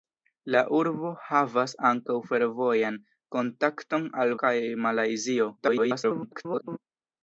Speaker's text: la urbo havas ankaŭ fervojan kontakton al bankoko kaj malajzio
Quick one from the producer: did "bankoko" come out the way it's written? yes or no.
no